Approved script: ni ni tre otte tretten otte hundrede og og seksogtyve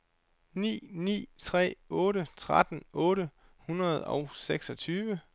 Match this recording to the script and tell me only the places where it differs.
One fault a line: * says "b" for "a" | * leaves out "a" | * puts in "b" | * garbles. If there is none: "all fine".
* leaves out "og"